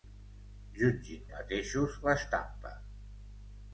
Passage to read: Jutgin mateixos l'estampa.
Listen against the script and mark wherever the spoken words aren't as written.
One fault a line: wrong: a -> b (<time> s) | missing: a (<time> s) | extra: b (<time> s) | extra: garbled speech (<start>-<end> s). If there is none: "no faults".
no faults